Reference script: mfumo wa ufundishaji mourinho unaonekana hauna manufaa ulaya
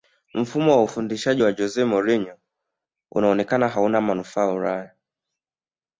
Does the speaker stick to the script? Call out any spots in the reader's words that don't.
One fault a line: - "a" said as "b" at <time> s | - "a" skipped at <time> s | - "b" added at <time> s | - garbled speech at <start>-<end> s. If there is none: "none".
- "wa jose" added at 1.4 s